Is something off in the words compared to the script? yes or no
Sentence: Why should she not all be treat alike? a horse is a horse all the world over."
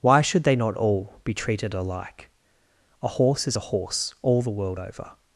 yes